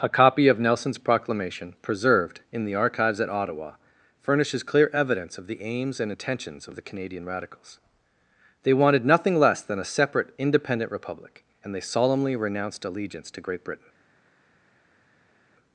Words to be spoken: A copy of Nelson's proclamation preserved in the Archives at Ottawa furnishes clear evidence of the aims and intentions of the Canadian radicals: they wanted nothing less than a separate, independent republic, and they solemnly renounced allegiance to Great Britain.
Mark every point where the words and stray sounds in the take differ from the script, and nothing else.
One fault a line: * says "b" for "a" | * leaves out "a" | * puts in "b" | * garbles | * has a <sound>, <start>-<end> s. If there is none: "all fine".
all fine